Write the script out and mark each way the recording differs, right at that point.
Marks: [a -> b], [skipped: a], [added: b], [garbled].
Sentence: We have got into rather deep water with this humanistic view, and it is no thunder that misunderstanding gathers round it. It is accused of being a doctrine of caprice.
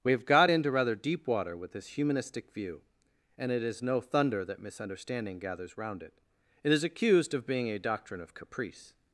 We have got into rather deep water with this humanistic view, and it is no thunder that misunderstanding gathers round it. It is accused of being a doctrine of caprice.